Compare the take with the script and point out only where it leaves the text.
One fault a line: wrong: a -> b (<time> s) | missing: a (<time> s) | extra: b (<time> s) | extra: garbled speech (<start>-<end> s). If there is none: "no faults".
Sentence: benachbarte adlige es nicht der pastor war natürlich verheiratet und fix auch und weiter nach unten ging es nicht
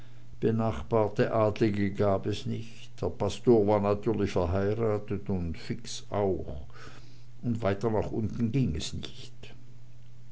extra: gab (1.9 s)